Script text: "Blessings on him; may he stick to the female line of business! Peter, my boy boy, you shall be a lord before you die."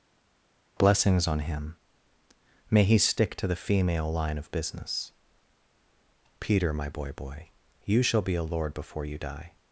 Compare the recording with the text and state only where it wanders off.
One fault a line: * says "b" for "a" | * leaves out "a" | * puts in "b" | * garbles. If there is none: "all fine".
all fine